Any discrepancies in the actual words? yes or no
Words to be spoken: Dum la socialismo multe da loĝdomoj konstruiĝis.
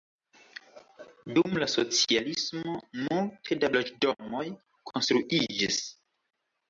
no